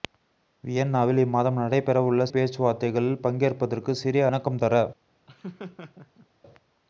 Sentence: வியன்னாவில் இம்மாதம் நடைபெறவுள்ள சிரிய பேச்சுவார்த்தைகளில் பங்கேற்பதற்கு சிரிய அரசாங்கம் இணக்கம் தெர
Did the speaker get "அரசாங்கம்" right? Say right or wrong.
wrong